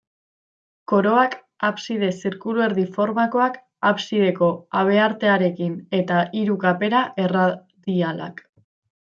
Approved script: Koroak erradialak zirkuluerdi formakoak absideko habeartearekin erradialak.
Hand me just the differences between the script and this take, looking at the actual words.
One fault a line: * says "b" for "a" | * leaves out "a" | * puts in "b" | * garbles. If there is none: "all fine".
* says "abside" for "erradialak"
* puts in "eta hiru kapera"